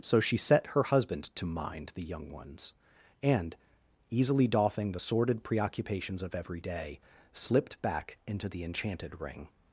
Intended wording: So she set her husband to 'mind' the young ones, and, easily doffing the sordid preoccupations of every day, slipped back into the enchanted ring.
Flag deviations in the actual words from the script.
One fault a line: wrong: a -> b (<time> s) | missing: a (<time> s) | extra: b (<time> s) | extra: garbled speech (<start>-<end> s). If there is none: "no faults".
no faults